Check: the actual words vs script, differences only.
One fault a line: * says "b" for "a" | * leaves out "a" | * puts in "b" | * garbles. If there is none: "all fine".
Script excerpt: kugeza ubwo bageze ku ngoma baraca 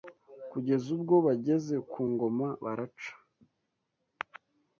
all fine